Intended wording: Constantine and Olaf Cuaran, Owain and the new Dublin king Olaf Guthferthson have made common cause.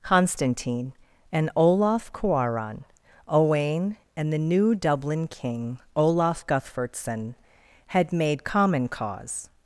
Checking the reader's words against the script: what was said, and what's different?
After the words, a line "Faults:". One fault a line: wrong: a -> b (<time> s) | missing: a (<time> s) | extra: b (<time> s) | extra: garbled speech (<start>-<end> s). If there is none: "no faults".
Constantine and Olaf Cuaran, Owain and the new Dublin king Olaf Guthferthson had made common cause.
Faults:
wrong: have -> had (7.9 s)